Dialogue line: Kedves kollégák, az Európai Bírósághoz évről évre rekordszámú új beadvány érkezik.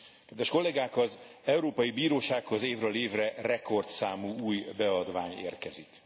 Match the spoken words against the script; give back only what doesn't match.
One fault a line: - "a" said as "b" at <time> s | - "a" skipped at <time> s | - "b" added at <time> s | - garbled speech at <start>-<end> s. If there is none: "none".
none